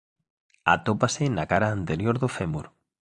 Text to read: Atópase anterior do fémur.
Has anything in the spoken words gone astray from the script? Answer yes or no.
yes